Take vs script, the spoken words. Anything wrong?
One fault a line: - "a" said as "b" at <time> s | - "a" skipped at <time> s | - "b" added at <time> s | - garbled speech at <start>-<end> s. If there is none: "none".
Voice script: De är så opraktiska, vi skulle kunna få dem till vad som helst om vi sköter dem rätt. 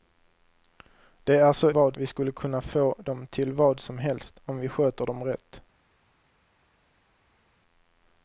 - "opraktiska" said as "vad" at 1.7 s